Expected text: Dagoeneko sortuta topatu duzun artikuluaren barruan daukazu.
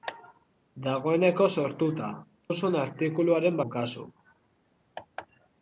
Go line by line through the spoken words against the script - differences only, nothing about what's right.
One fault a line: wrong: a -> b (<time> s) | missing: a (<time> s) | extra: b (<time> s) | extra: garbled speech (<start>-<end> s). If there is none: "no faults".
missing: topatu (2.1 s)
missing: barruan (3.6 s)